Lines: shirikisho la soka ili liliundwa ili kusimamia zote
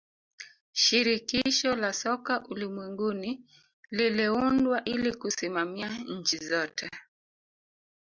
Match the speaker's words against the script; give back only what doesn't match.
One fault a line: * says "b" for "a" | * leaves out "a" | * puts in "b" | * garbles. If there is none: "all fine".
* says "ulimwenguni" for "ili"
* puts in "nchi"